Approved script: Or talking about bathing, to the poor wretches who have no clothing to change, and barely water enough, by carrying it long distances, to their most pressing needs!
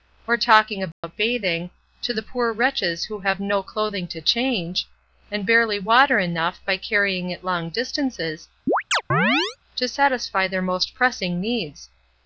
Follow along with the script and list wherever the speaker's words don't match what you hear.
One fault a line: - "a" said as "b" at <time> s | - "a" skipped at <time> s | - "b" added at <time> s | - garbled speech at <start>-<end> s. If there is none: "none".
- "satisfy" added at 9.9 s